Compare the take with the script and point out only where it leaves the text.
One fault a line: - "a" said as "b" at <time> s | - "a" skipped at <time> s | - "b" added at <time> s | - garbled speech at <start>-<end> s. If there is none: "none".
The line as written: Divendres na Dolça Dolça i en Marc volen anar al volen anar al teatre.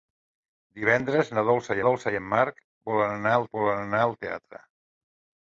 none